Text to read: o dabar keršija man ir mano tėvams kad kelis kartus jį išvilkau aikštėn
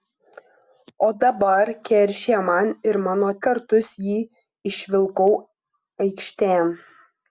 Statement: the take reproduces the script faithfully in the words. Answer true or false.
false